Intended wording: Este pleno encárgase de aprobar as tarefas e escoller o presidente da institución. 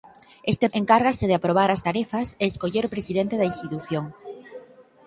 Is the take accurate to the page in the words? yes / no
no